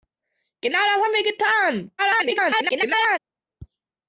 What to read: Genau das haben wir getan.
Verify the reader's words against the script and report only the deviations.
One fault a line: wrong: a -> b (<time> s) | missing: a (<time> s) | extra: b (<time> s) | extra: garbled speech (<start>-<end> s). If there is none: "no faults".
extra: garbled speech (2.0-3.2 s)